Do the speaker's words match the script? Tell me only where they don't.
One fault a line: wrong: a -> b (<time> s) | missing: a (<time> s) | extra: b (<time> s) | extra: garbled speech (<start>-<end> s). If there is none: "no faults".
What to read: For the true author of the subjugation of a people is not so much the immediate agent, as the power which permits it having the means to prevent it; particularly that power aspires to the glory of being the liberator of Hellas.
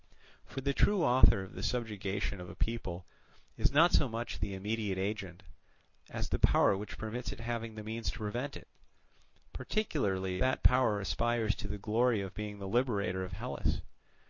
no faults